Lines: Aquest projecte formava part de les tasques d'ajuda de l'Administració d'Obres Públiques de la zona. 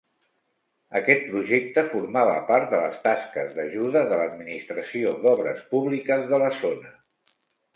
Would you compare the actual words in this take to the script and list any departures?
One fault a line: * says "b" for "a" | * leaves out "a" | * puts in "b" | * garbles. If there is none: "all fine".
all fine